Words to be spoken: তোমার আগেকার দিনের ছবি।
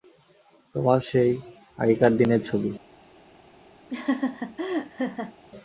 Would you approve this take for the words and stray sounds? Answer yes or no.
no